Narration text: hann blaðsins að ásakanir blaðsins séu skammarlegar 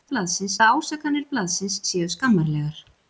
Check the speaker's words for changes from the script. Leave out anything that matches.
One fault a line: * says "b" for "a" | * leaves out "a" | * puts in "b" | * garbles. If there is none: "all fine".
all fine